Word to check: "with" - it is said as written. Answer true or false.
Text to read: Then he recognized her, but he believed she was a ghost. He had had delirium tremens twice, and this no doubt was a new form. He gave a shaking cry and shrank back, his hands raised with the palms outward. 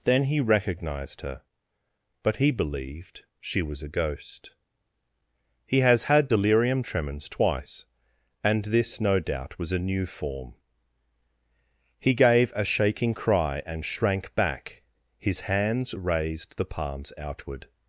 false